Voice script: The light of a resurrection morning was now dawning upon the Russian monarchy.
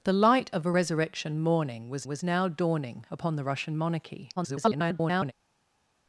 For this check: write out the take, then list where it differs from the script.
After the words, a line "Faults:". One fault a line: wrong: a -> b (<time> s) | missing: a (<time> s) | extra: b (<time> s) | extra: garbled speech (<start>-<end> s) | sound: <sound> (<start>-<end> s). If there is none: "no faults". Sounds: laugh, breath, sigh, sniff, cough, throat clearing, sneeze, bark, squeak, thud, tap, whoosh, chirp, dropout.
The light of a resurrection morning was was now dawning upon the Russian monarchy. [garbled]
Faults:
extra: was (2.1 s)
extra: garbled speech (4.4-5.3 s)